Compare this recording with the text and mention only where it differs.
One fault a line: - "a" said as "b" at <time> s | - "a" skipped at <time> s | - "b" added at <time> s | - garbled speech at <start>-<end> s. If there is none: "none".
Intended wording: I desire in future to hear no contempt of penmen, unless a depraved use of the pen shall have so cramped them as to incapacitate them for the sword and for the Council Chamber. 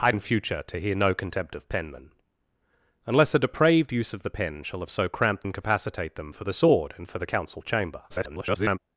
- "desire" skipped at 0.1 s
- "them as to" skipped at 5.5 s
- garbled speech at 8.1-8.8 s